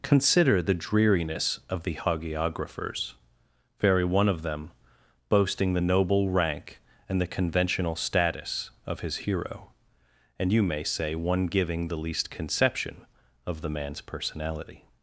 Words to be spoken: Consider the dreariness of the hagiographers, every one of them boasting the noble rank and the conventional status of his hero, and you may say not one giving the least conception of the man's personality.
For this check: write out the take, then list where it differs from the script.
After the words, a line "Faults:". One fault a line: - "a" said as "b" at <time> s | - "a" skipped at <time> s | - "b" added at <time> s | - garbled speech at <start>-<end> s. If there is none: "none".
Consider the dreariness of the hagiographers, very one of them boasting the noble rank and the conventional status of his hero, and you may say one giving the least conception of the man's personality.
Faults:
- "every" said as "very" at 3.8 s
- "not" skipped at 11.1 s